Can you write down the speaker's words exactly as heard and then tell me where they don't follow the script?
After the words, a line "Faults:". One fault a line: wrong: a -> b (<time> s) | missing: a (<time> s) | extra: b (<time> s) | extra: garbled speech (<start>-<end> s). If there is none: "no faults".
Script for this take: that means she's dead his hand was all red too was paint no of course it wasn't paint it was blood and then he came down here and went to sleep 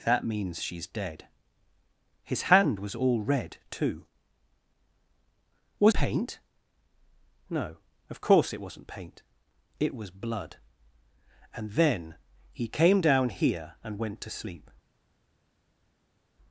that means she's dead his hand was all red too was paint no of course it wasn't paint it was blood and then he came down here and went to sleep
Faults:
no faults